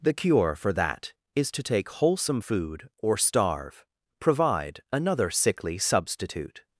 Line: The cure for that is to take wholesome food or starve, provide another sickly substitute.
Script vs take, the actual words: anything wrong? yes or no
no